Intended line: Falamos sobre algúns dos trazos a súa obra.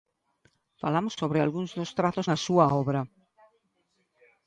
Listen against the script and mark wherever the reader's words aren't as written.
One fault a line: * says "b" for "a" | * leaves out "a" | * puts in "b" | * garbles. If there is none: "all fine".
all fine